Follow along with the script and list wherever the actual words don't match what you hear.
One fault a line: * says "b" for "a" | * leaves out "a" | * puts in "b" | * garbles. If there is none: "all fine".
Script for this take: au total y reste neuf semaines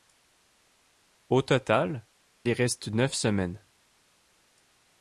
all fine